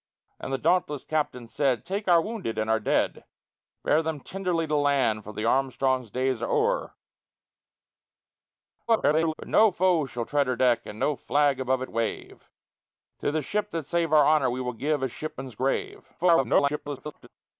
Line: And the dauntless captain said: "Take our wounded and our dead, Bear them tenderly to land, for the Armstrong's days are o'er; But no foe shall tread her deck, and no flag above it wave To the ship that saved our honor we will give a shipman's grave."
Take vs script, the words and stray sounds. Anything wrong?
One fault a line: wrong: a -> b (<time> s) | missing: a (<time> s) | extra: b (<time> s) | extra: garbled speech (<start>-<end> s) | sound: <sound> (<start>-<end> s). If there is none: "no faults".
extra: garbled speech (8.9-9.3 s)
extra: garbled speech (16.2-17.3 s)